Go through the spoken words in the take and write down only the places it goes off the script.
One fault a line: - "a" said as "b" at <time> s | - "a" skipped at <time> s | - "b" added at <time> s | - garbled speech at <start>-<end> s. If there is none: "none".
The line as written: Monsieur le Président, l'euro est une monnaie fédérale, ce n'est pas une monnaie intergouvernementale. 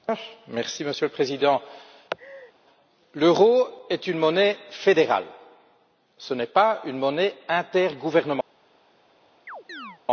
none